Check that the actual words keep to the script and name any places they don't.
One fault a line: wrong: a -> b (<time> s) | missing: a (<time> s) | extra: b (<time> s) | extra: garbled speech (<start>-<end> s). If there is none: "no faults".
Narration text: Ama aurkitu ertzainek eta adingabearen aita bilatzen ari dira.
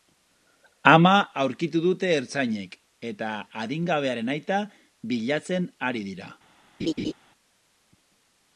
extra: dute (1.8 s)